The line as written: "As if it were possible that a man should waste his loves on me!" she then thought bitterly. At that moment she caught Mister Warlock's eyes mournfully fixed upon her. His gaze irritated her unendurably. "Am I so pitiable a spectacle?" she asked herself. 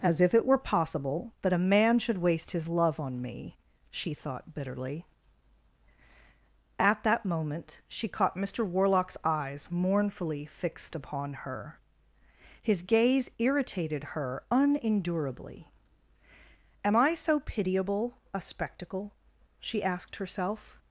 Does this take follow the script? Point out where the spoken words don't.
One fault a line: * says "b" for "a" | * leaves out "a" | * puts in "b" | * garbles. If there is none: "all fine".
* says "love" for "loves"
* leaves out "then"